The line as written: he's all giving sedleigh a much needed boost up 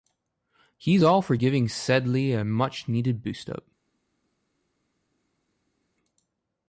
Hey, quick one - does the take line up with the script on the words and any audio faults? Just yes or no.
no